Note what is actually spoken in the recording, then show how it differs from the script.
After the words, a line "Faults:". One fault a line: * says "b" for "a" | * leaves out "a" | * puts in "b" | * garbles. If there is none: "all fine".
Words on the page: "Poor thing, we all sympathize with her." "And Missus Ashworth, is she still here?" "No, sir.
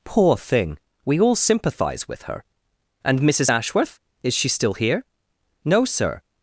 "Poor thing, we all sympathize with her." "And Missus Ashworth, is she still here?" "No, sir.
Faults:
all fine